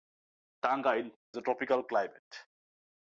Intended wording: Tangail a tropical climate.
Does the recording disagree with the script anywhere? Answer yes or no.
no